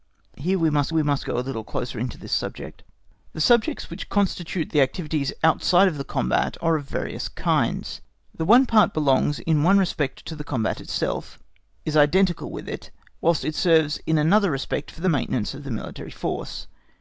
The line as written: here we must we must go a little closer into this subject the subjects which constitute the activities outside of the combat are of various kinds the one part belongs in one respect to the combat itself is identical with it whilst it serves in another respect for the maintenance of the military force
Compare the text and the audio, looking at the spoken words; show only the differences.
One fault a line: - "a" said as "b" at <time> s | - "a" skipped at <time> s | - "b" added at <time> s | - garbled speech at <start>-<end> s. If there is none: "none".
none